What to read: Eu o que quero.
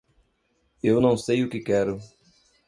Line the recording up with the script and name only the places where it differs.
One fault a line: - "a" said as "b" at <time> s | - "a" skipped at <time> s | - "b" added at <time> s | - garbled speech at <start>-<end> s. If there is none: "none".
- "não sei" added at 1.0 s